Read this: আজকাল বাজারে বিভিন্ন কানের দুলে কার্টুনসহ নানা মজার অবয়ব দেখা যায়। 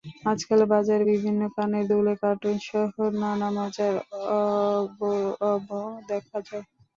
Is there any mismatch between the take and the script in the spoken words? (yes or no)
no